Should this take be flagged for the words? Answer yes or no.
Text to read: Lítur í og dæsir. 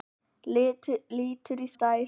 no